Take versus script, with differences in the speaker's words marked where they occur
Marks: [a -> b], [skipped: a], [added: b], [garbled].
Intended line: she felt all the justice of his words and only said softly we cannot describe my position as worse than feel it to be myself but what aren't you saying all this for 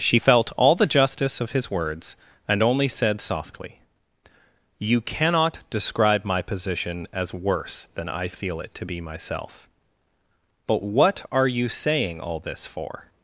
she felt all the justice of his words and only said softly [we -> you] cannot describe my position as worse than [added: i] feel it to be myself but what [aren't -> are] you saying all this for